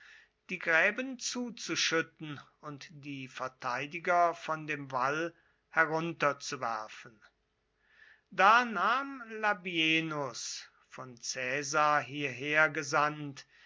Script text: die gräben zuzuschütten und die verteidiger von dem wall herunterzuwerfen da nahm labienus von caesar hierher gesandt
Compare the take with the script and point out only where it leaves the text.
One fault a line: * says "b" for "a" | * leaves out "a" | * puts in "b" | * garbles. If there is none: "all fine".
all fine